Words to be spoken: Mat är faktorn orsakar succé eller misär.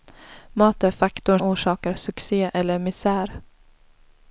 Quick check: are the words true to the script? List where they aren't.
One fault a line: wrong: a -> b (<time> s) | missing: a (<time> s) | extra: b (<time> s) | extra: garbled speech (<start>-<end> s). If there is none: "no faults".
no faults